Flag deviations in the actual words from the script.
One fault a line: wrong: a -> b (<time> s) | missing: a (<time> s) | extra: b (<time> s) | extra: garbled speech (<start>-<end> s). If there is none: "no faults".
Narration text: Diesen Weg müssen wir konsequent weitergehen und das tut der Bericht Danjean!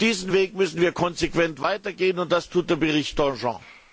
no faults